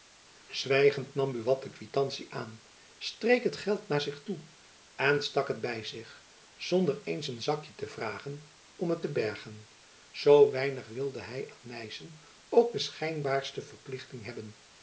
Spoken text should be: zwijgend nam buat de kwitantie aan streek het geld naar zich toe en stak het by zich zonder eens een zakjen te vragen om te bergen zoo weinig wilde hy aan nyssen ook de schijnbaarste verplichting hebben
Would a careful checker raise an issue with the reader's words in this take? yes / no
yes